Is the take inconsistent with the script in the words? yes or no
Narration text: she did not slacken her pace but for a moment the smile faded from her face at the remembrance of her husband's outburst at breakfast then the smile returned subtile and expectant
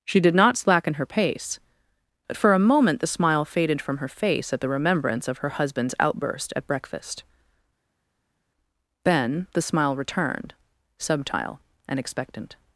no